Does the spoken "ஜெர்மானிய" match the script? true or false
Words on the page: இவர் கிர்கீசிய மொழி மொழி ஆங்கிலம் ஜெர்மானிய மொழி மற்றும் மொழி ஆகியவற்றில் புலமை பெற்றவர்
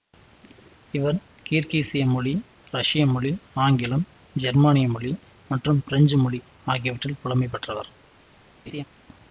true